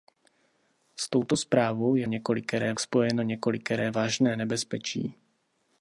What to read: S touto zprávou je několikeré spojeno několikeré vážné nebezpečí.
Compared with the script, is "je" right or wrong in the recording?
right